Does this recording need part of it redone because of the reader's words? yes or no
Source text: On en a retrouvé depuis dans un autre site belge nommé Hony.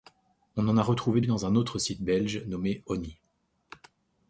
yes